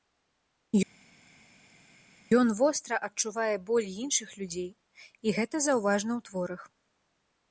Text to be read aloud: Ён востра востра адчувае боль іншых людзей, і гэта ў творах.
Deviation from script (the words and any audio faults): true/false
true